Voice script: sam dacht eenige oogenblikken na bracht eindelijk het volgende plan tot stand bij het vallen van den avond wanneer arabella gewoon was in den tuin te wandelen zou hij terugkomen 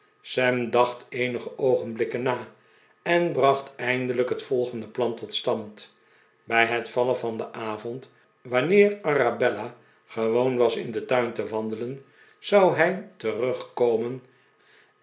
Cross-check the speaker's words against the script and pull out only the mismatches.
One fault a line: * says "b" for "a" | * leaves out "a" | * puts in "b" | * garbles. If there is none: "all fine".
* puts in "en"